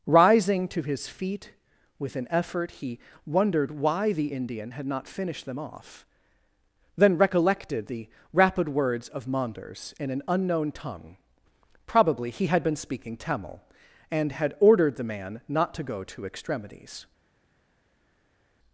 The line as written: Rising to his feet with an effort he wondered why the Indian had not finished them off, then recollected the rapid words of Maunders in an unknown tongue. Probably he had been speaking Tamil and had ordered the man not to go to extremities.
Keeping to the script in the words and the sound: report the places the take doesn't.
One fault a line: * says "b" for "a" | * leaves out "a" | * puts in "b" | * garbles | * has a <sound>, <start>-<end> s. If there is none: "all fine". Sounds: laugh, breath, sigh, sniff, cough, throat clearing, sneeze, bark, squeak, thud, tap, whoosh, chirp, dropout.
all fine